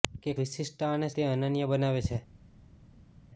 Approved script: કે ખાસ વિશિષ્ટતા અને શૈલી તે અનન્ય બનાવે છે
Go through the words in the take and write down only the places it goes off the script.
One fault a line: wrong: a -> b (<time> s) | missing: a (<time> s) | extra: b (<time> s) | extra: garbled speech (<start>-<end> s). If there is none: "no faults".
missing: ખાસ (0.3 s)
missing: શૈલી (1.1 s)